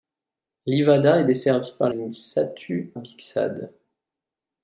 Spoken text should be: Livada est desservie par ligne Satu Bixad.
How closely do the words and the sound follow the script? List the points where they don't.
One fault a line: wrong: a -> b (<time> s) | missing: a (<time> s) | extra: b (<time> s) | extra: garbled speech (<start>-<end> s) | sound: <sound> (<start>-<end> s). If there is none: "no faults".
no faults